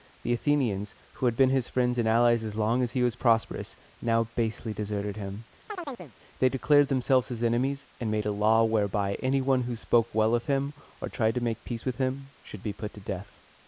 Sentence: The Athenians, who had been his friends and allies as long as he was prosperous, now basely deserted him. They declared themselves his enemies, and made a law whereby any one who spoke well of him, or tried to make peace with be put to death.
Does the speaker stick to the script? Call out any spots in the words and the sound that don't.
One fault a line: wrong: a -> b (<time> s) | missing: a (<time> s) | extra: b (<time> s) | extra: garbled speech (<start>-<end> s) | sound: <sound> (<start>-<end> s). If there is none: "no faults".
sound: chirp (5.7-6.2 s)
extra: him should (12.0 s)